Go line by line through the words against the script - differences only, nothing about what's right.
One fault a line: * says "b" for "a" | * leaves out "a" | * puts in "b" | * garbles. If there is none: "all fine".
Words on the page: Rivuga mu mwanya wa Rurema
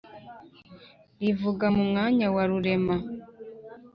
all fine